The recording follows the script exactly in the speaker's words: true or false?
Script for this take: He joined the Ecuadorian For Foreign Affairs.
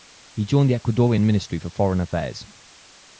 false